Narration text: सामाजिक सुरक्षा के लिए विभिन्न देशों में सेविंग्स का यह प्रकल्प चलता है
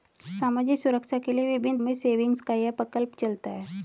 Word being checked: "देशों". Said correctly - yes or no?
no